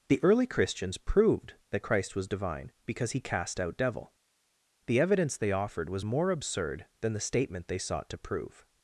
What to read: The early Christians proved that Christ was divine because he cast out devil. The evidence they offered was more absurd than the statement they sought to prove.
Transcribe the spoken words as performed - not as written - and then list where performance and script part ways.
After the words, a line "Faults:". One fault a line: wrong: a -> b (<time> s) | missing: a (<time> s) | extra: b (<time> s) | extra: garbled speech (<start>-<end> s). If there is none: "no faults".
The early Christians proved that Christ was divine because he cast out devil. The evidence they offered was more absurd than the statement they sought to prove.
Faults:
no faults